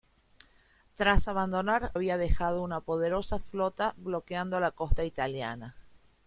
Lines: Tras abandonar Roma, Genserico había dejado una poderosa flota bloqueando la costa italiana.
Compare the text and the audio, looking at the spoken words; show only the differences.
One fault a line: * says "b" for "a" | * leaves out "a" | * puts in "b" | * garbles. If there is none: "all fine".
* leaves out "Roma Genserico"